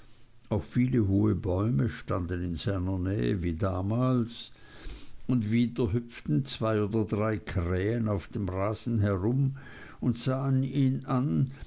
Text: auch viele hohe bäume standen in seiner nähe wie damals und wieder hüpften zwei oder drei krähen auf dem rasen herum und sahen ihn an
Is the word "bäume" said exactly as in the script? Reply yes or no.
yes